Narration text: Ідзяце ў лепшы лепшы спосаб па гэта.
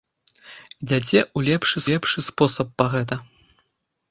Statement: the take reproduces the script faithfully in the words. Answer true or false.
true